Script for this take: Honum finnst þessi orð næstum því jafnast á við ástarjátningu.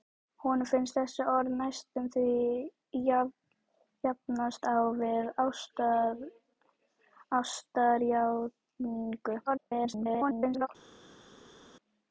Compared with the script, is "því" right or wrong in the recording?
right